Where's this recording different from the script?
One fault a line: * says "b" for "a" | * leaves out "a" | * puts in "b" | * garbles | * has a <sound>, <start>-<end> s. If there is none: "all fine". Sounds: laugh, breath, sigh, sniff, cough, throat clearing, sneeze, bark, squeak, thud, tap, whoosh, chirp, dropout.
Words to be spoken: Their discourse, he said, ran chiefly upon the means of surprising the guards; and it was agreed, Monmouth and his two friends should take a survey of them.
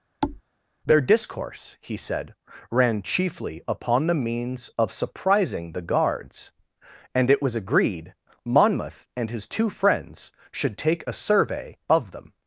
* has a thud, 0.2-0.4 s